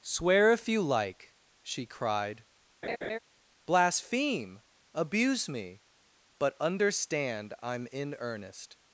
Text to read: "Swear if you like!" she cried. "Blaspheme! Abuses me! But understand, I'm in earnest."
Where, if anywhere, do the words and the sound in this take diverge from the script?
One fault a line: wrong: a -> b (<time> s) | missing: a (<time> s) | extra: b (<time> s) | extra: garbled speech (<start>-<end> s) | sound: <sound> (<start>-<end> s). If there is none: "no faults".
sound: laugh (2.8-3.2 s)
wrong: Abuses -> Abuse (4.9 s)